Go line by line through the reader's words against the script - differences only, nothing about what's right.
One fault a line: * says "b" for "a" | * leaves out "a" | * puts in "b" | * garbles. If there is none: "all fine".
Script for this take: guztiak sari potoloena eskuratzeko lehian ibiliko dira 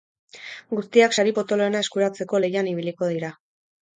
all fine